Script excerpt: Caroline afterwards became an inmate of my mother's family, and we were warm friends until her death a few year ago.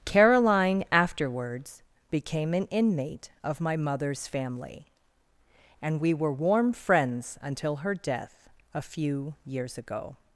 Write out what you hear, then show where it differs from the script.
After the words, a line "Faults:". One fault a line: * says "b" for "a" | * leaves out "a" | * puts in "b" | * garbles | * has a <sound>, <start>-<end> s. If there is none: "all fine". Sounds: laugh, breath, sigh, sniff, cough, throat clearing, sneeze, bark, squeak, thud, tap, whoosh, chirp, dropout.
Caroline afterwards became an inmate of my mother's family, and we were warm friends until her death a few years ago.
Faults:
* says "years" for "year"